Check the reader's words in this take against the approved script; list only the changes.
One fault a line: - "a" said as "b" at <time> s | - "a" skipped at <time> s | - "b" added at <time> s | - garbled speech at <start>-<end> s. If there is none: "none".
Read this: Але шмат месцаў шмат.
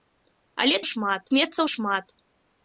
none